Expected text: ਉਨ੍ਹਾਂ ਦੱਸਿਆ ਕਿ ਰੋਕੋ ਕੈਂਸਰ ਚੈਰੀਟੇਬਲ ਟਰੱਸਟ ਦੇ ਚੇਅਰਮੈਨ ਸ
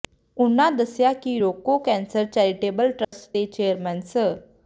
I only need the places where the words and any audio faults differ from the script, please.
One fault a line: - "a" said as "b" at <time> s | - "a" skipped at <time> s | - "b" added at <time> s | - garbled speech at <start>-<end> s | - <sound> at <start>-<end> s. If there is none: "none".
- dropout at 3.0-3.1 s